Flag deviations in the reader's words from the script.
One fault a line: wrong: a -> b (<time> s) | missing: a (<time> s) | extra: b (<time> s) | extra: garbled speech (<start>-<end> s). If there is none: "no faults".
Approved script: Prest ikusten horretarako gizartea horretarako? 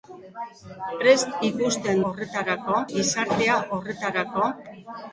no faults